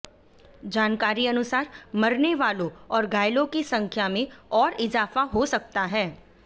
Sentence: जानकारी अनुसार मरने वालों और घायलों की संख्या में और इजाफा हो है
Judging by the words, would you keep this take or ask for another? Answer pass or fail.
fail